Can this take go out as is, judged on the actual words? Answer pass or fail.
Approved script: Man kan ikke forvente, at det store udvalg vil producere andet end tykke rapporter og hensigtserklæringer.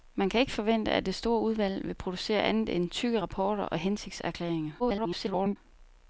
fail